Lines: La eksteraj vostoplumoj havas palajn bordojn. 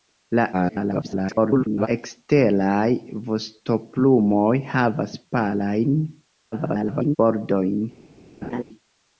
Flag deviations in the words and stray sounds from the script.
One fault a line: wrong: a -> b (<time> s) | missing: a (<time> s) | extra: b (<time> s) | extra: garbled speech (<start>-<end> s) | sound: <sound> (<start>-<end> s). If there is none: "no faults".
extra: garbled speech (0.5-1.9 s)
extra: garbled speech (6.5-7.2 s)
sound: laugh (8.4-8.6 s)